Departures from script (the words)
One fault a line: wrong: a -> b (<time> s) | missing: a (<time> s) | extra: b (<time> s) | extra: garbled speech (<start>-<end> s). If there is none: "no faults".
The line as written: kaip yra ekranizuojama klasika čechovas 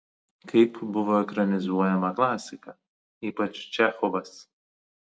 wrong: yra -> buvo (0.9 s)
extra: ypač (3.3 s)